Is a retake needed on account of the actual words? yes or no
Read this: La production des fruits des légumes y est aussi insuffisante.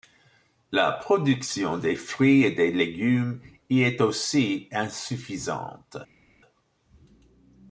yes